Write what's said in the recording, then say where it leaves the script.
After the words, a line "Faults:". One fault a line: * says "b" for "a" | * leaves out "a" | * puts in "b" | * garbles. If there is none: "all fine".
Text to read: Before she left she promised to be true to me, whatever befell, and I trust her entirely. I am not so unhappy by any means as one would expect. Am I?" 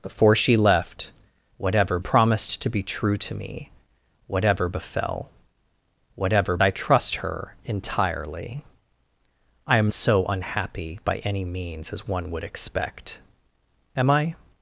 Before she left whatever promised to be true to me, whatever befell, whatever I trust her entirely. I am so unhappy by any means as one would expect. Am I?"
Faults:
* says "whatever" for "she"
* says "whatever" for "and"
* leaves out "not"